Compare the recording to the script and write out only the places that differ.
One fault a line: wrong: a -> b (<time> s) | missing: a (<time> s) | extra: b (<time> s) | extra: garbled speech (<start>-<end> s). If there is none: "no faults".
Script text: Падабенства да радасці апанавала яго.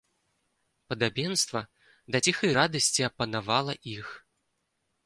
extra: ціхай (2.3 s)
wrong: яго -> іх (4.0 s)